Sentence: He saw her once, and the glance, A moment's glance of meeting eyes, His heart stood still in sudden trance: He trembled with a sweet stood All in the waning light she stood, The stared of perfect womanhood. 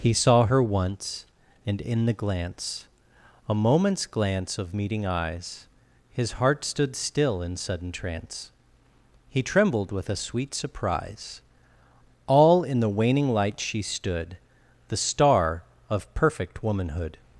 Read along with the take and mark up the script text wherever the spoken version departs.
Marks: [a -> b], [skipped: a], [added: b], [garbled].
He saw her once, and [added: in] the glance, A moment's glance of meeting eyes, His heart stood still in sudden trance: He trembled with a sweet [stood -> surprise] All in the waning light she stood, The [stared -> star] of perfect womanhood.